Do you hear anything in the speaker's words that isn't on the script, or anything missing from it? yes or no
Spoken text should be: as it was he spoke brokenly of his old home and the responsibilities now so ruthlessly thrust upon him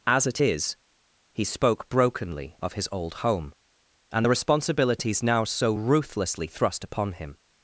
yes